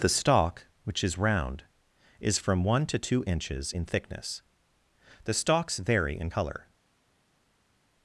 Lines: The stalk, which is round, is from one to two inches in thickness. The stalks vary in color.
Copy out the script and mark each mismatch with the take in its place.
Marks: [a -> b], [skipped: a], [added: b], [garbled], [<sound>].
The stalk, which is round, is from one to two inches in thickness. The stalks vary in color.